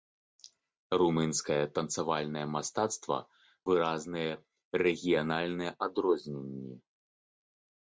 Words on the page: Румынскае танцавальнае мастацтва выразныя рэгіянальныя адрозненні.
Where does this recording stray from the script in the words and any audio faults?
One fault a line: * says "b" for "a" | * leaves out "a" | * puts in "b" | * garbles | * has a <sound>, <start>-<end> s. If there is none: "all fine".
all fine